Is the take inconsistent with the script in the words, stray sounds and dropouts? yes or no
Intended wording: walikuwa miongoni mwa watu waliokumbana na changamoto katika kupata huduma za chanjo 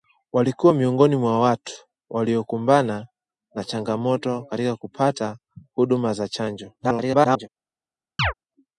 yes